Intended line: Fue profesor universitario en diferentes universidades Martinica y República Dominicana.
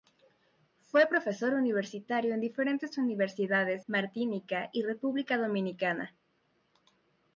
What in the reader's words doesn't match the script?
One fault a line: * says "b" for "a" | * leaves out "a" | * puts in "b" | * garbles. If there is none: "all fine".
all fine